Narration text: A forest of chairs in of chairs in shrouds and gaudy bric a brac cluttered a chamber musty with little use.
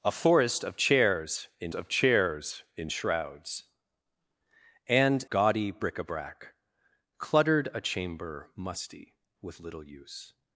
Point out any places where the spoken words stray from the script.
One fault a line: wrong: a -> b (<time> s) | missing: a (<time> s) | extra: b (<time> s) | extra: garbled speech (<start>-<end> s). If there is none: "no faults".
no faults